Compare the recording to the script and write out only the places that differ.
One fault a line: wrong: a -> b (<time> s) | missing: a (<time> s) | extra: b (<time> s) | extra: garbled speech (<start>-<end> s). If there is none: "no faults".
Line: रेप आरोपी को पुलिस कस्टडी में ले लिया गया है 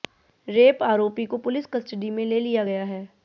no faults